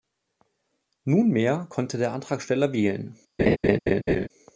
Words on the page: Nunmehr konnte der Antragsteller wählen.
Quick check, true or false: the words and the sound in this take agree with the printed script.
false